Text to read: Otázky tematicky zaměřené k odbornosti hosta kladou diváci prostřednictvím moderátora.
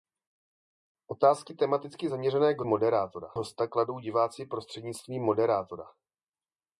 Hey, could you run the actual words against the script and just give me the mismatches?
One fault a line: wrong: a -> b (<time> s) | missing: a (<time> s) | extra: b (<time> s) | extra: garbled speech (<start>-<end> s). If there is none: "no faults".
wrong: odbornosti -> moderátora (2.7 s)